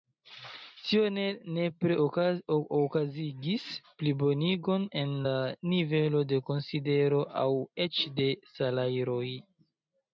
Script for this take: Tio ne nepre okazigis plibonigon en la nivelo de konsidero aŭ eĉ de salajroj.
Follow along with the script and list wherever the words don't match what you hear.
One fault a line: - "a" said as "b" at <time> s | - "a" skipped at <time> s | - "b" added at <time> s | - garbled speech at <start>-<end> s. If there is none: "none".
none